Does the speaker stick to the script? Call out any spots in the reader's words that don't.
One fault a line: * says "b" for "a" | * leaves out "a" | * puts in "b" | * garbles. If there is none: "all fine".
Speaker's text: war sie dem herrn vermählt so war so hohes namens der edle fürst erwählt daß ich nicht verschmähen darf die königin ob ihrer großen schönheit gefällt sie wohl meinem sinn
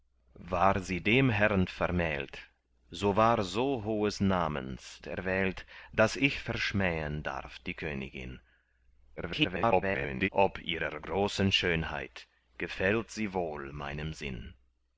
* leaves out "der edle fürst"
* leaves out "nicht"
* garbles